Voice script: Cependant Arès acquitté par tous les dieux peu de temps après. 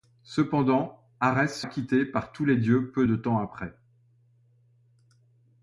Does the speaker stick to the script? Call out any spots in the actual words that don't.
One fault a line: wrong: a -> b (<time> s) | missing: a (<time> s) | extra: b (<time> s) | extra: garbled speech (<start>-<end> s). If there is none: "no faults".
no faults